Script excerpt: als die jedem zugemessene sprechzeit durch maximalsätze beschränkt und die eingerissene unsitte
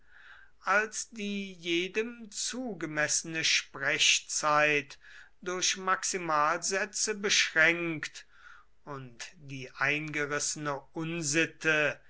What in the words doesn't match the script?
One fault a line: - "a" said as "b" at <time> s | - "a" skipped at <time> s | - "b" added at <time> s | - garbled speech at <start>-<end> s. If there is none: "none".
none